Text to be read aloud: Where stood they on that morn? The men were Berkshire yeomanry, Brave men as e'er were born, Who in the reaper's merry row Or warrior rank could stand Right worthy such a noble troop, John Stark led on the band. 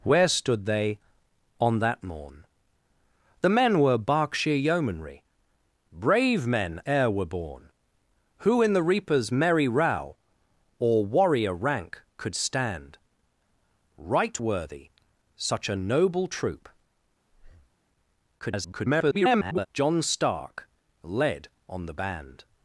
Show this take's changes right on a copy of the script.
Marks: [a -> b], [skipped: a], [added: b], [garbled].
Where stood they on that morn? The men were Berkshire yeomanry, Brave men [skipped: as] e'er were born, Who in the reaper's merry row Or warrior rank could stand Right worthy such a noble troop, [garbled] John Stark led on the band.